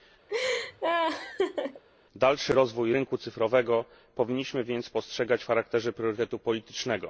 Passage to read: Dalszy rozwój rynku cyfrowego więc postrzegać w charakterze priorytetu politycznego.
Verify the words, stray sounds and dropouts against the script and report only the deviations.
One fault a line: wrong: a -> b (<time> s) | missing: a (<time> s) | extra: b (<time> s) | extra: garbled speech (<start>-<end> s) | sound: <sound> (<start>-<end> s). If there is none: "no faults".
sound: laugh (0.3-1.8 s)
extra: powinniśmy (4.2 s)